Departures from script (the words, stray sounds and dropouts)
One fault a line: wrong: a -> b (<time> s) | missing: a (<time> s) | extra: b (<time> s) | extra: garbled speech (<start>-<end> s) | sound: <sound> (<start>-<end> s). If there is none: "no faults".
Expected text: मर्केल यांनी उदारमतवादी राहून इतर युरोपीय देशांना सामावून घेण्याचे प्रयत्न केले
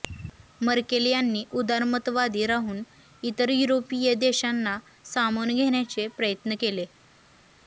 no faults